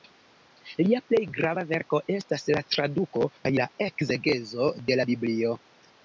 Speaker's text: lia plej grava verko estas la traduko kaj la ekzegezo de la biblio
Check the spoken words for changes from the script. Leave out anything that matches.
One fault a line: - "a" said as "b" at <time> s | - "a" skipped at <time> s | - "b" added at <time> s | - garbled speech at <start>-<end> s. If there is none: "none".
none